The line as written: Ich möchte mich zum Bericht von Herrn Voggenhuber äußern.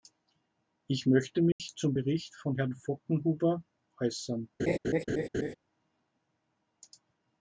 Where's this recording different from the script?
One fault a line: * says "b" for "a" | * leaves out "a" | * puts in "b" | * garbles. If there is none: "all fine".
all fine